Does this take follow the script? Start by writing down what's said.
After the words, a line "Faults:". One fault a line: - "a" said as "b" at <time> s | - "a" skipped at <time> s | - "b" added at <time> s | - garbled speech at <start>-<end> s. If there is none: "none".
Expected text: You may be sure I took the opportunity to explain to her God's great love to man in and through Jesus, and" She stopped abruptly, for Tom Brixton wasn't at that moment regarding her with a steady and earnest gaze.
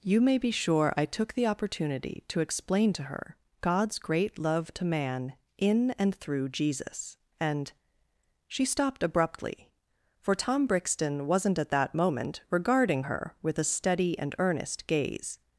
You may be sure I took the opportunity to explain to her God's great love to man in and through Jesus, and" She stopped abruptly, for Tom Brixton wasn't at that moment regarding her with a steady and earnest gaze.
Faults:
none